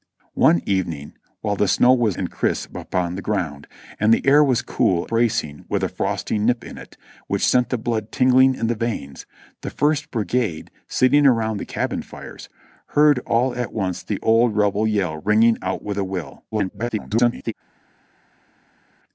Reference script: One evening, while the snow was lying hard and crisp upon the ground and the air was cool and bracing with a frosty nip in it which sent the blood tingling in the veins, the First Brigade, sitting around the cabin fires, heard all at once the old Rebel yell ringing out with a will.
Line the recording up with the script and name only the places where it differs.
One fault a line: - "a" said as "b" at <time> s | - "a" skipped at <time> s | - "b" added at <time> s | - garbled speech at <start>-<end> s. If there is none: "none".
- "lying hard" skipped at 2.2 s
- "and" skipped at 5.1 s
- garbled speech at 16.5-17.5 s